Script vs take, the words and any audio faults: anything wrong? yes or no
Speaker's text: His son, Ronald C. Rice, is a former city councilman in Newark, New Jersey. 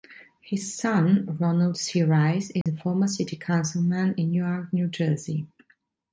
yes